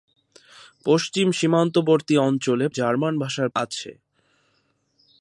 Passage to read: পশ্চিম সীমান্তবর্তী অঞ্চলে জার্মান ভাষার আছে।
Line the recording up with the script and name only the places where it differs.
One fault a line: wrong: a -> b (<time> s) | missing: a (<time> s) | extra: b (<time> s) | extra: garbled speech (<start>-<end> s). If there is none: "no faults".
no faults